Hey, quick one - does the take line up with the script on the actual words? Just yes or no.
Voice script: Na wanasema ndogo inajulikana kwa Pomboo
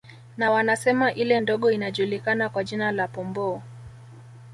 no